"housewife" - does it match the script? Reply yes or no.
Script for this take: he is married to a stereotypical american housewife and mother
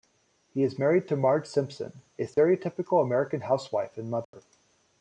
yes